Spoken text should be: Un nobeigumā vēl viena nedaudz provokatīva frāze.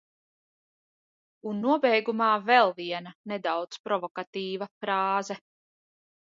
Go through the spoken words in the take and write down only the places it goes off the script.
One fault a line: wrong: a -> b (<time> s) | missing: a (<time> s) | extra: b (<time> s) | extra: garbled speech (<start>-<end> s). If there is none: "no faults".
no faults